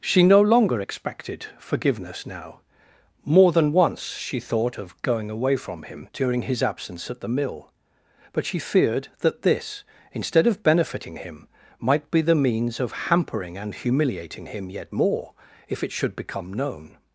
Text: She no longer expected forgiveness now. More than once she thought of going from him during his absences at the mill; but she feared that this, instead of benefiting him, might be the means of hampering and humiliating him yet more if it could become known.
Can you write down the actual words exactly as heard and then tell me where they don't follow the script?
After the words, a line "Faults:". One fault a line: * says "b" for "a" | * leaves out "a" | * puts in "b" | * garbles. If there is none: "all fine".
She no longer expected forgiveness now. More than once she thought of going away from him during his absence at the mill; but she feared that this, instead of benefiting him, might be the means of hampering and humiliating him yet more if it should become known.
Faults:
* puts in "away"
* says "absence" for "absences"
* says "should" for "could"